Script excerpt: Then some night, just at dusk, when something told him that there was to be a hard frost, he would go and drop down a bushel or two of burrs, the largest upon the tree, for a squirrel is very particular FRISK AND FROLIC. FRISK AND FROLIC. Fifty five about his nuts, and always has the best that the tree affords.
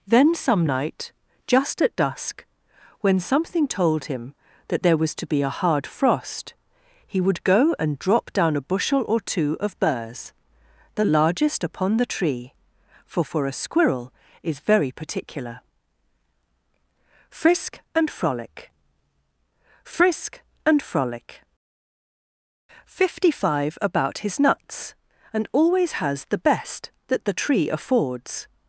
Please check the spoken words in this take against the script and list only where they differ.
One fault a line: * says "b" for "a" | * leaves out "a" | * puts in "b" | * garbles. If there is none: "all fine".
* puts in "for"